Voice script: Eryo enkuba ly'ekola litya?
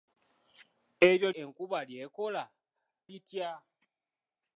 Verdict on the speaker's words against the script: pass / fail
pass